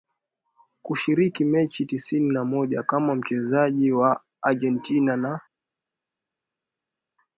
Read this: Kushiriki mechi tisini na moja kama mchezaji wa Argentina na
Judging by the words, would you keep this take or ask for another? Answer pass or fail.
pass